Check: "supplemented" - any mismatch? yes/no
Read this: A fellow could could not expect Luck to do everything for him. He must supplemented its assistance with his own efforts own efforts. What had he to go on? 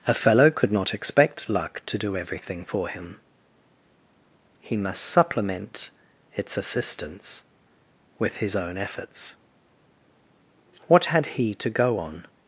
yes